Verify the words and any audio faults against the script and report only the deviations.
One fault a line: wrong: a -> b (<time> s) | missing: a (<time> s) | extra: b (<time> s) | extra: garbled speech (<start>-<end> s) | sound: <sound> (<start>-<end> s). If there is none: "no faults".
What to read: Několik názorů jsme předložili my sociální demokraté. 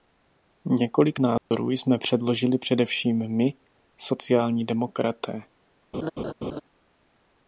sound: dropout (1.4-1.5 s)
extra: především (2.6 s)
sound: laugh (5.9-6.6 s)